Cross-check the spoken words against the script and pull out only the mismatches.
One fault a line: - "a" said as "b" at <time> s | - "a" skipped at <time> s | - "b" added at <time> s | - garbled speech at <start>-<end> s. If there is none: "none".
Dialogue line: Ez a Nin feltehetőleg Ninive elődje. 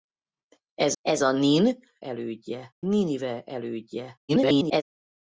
- "ez" added at 1.0 s
- "feltehetőleg" said as "elődje" at 2.0 s
- garbled speech at 4.3-4.8 s